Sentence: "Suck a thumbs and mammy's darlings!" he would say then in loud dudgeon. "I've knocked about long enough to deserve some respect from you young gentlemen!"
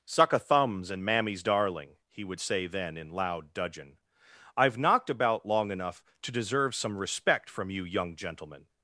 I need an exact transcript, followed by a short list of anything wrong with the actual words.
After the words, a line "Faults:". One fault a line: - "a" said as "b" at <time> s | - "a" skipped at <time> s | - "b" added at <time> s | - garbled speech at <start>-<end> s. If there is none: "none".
"Suck a thumbs and mammy's darling!" he would say then in loud dudgeon. "I've knocked about long enough to deserve some respect from you young gentlemen!"
Faults:
- "darlings" said as "darling" at 1.4 s